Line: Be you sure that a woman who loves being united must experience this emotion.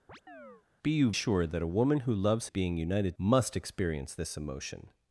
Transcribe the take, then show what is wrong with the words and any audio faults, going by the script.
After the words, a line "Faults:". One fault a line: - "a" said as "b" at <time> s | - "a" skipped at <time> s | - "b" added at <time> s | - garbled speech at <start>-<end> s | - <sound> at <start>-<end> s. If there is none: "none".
Be you sure that a woman who loves being united must experience this emotion.
Faults:
- chirp at 0.1-0.6 s